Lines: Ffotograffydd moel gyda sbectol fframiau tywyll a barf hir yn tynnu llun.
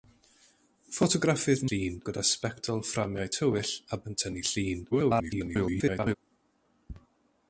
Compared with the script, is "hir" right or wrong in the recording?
wrong